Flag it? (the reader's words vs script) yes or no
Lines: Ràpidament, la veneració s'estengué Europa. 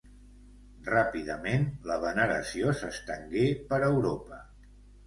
yes